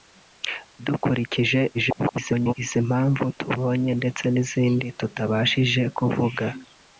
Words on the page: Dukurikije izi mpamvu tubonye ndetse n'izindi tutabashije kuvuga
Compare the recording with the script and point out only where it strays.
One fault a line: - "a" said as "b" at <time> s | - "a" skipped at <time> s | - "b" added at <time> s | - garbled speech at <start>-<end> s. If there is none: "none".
- garbled speech at 1.7-2.5 s